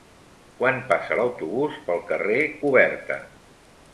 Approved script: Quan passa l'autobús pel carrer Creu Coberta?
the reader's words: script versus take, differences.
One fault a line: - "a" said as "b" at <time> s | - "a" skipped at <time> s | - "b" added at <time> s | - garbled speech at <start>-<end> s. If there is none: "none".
- "Creu" skipped at 2.4 s